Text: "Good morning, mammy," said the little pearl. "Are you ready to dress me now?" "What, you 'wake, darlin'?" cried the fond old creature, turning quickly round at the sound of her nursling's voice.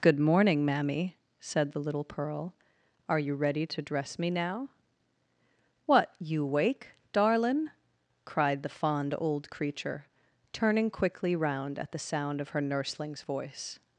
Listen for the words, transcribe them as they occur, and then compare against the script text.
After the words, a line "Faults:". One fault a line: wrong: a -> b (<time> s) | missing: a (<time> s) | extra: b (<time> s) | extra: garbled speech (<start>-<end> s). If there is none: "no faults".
"Good morning, mammy," said the little pearl. "Are you ready to dress me now?" "What, you 'wake, darlin'?" cried the fond old creature, turning quickly round at the sound of her nursling's voice.
Faults:
no faults